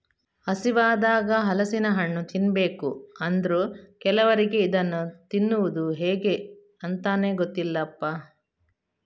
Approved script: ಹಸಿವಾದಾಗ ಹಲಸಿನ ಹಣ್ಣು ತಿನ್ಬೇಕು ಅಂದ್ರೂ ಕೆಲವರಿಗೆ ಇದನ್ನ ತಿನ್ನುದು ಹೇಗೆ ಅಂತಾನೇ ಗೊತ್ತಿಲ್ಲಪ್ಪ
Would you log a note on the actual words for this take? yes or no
no